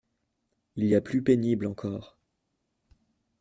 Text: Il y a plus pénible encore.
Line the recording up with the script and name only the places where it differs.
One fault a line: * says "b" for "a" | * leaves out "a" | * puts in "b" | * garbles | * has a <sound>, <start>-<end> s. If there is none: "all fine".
all fine